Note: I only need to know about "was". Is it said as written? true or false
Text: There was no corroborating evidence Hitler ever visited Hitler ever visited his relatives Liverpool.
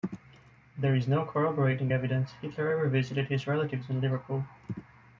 false